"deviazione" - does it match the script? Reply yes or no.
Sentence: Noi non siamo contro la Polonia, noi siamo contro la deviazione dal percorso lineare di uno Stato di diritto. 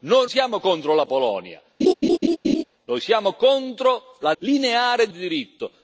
no